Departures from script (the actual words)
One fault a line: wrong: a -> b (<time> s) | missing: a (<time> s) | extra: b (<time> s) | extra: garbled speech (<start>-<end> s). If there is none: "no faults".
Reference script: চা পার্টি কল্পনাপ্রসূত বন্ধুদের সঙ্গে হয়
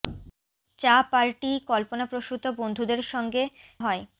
no faults